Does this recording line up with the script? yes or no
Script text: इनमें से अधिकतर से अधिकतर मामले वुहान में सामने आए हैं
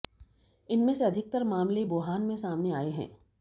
no